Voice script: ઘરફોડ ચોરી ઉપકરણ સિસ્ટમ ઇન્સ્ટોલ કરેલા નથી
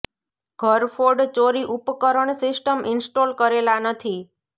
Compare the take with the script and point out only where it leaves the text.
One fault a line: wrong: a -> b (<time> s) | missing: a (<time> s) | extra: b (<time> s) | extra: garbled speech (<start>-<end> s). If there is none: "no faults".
no faults